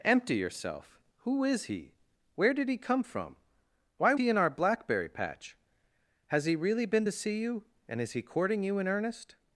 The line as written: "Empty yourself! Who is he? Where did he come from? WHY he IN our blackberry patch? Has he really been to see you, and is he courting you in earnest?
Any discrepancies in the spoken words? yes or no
no